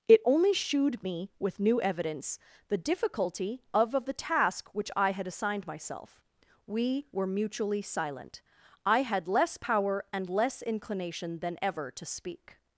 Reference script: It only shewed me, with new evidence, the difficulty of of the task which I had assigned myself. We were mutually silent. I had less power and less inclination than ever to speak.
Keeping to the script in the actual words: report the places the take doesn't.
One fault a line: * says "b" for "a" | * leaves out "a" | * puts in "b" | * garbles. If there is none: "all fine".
all fine